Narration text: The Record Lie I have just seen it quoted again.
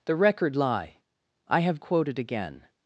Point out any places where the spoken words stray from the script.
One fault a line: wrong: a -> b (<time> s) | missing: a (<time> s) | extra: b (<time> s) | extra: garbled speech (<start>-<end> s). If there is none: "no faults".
missing: just seen it (1.8 s)